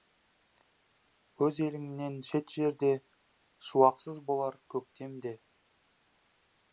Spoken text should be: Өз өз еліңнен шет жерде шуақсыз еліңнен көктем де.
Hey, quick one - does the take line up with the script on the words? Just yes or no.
no